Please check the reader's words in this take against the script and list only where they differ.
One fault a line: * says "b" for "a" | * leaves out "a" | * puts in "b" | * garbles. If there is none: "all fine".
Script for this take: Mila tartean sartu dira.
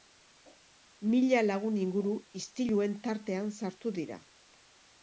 * puts in "lagun inguru istiluen"